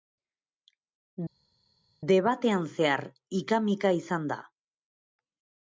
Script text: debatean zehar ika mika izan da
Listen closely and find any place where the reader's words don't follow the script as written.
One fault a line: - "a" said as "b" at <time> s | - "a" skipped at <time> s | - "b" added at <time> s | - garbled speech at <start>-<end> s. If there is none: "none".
none